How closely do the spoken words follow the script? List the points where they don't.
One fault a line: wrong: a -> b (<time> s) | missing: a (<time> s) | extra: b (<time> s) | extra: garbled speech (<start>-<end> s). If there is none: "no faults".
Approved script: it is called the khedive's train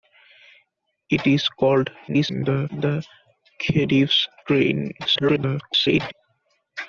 extra: garbled speech (2.1-2.7 s)
extra: garbled speech (5.0-6.1 s)